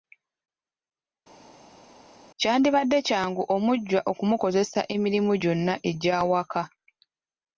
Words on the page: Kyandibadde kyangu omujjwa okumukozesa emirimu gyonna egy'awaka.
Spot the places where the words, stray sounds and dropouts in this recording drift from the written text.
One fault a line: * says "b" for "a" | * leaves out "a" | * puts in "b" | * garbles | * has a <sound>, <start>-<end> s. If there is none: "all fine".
all fine